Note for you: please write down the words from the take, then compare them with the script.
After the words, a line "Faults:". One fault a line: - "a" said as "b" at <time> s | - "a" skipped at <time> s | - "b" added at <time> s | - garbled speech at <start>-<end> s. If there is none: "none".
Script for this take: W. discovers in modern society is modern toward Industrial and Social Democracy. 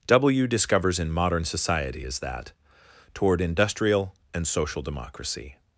W. discovers in modern society is that toward Industrial and Social Democracy.
Faults:
- "modern" said as "that" at 2.2 s